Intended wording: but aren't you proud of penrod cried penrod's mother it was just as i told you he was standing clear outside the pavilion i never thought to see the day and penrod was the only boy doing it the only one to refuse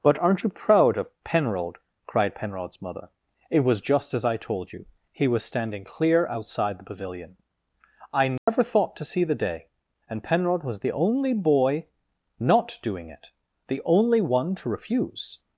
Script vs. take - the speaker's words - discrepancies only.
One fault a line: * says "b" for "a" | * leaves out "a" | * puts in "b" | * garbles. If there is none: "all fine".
* puts in "not"